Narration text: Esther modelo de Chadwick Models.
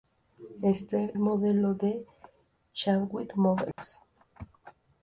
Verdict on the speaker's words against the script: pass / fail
pass